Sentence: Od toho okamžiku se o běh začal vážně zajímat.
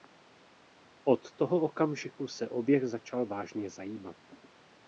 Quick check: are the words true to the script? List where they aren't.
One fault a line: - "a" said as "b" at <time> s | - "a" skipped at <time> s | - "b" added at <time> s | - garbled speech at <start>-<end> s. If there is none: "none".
none